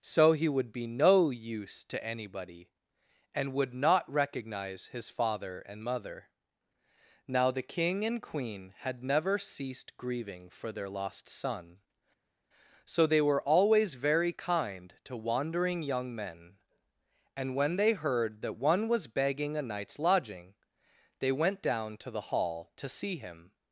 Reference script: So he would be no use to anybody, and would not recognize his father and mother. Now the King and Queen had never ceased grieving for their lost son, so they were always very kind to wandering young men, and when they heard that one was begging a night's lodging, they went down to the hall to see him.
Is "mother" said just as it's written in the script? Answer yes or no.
yes